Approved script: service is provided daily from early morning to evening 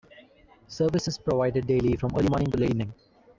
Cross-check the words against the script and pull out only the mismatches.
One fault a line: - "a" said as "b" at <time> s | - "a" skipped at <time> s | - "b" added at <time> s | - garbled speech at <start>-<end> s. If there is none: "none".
- "late" added at 2.6 s